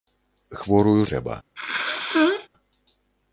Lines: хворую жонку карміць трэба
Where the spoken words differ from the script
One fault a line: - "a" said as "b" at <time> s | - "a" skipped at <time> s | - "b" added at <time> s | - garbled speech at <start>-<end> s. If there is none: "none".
- "жонку карміць" skipped at 1.0 s